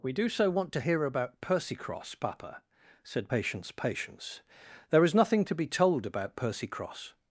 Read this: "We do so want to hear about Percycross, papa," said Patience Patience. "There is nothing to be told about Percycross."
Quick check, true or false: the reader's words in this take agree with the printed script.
true